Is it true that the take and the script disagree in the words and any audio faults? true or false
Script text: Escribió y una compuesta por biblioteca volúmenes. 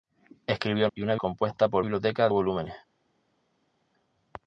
false